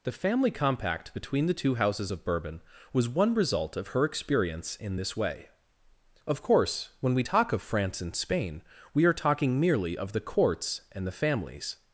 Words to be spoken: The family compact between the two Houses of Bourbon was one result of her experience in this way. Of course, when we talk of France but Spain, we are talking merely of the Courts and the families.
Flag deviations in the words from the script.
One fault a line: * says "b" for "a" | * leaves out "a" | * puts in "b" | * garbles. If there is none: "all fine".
* says "and" for "but"